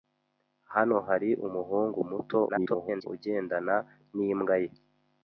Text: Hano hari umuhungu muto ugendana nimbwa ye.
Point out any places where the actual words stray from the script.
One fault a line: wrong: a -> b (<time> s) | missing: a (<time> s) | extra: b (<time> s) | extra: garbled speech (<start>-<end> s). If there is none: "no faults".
extra: garbled speech (2.5-3.1 s)